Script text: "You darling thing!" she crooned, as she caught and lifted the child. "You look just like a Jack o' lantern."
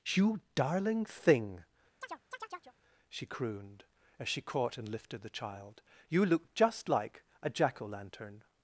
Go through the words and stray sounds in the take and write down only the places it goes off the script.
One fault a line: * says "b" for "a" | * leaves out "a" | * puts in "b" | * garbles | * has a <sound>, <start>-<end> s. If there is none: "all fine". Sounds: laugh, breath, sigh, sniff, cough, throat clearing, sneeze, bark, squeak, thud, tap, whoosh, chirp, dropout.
* has a chirp, 2.0-2.8 s